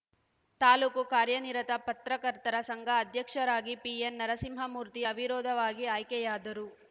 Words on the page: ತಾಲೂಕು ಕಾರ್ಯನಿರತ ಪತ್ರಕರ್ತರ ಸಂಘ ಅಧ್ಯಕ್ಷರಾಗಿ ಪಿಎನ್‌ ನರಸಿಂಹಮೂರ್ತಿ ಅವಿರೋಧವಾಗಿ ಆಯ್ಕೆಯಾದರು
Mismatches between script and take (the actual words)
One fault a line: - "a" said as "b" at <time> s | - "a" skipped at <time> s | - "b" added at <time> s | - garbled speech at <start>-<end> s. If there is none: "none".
none